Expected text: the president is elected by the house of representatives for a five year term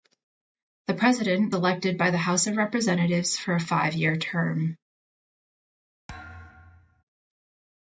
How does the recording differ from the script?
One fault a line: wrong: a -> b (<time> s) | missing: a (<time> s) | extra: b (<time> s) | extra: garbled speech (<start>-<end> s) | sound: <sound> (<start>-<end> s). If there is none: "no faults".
missing: is (1.6 s)
sound: thud (6.1-7.0 s)